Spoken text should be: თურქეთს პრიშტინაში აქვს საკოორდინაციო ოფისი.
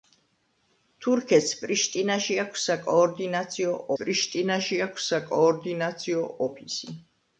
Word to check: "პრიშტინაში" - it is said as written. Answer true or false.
true